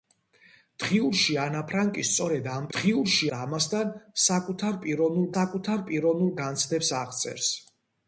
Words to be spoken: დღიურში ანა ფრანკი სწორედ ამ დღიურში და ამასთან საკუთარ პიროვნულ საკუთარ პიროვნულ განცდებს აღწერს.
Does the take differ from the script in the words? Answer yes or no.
no